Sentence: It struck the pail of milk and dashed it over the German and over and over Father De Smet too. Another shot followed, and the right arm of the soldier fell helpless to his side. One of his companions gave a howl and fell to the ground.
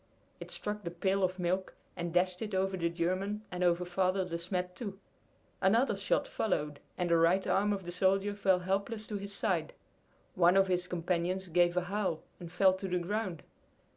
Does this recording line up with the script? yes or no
no